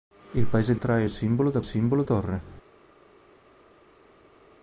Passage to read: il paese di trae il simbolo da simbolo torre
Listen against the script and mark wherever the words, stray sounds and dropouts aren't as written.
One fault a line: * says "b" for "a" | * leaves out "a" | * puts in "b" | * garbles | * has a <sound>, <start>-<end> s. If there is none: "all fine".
all fine